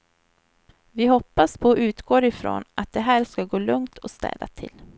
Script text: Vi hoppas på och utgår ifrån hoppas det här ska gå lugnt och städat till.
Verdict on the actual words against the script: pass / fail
fail